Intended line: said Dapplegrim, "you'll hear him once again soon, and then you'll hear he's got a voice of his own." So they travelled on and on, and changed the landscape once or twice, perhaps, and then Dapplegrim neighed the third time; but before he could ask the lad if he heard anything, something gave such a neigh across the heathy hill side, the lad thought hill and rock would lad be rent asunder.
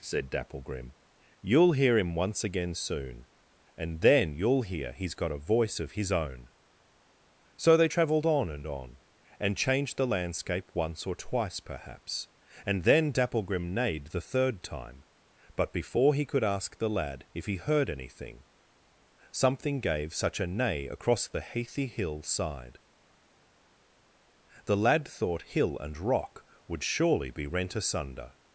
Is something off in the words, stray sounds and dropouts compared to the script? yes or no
yes